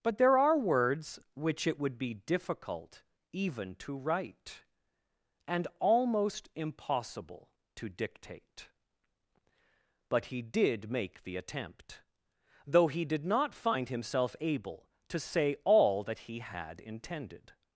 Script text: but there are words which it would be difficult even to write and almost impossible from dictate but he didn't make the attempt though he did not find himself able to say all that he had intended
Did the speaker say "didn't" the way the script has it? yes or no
no